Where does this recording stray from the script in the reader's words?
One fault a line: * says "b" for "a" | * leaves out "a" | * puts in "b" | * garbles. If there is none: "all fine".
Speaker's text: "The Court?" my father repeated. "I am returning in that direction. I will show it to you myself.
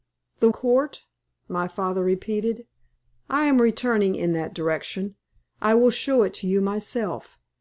all fine